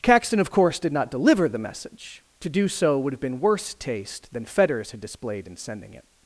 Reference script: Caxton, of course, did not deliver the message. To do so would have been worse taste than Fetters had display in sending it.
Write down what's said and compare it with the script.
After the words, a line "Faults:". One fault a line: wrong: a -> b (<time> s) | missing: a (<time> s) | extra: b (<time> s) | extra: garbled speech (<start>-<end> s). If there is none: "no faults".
Caxton, of course, did not deliver the message. To do so would have been worse taste than Fetters had displayed in sending it.
Faults:
wrong: display -> displayed (5.0 s)